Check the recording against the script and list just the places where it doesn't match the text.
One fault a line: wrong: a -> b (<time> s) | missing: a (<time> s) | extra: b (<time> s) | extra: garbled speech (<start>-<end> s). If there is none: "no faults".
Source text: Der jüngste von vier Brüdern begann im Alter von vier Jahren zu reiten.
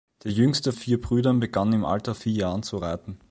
missing: von (0.7 s)
missing: von (2.2 s)